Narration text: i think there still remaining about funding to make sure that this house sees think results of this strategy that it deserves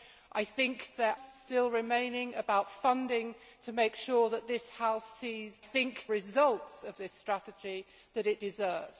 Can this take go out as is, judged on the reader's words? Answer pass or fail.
pass